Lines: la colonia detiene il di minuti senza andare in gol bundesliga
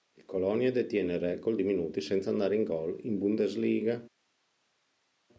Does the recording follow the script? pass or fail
fail